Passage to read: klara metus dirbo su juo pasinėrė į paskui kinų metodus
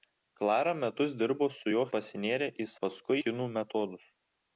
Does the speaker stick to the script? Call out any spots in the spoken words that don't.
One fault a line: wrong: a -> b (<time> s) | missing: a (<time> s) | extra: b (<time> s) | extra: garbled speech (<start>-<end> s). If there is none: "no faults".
no faults